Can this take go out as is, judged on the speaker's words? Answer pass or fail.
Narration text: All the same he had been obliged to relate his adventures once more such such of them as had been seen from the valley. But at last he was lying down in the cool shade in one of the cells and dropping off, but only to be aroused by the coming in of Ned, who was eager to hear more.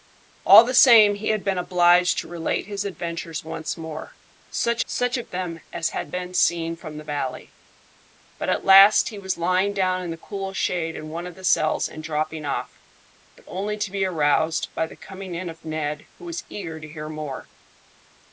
pass